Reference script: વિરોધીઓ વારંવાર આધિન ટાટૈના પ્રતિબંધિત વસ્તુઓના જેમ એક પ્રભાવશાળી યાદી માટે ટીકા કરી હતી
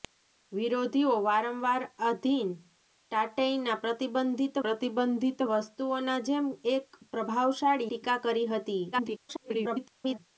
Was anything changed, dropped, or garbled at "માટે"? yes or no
yes